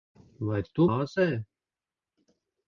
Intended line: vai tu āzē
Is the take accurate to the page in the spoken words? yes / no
yes